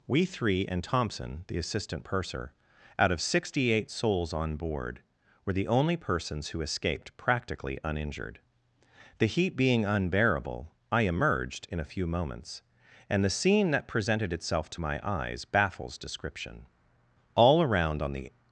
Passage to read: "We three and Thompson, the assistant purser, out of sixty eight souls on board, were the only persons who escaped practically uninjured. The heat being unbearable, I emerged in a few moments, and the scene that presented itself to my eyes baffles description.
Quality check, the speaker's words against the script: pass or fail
fail